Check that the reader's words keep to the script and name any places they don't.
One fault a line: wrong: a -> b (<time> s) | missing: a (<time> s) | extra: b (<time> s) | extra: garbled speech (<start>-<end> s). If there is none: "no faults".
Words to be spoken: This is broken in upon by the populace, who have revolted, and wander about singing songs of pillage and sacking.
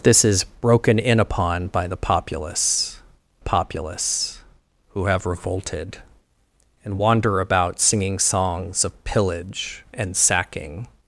extra: populace (3.4 s)